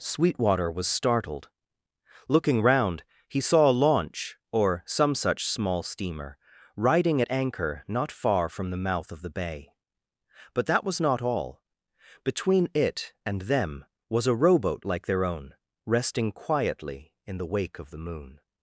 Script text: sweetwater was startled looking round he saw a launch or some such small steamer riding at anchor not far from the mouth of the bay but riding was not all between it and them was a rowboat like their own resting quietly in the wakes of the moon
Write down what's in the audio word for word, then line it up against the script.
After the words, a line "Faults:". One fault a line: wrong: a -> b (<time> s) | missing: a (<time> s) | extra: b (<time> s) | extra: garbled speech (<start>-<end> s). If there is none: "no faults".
sweetwater was startled looking round he saw a launch or some such small steamer riding at anchor not far from the mouth of the bay but that was not all between it and them was a rowboat like their own resting quietly in the wake of the moon
Faults:
wrong: riding -> that (10.7 s)
wrong: wakes -> wake (17.5 s)